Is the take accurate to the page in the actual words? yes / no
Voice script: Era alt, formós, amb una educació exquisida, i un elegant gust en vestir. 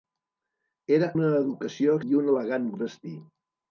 no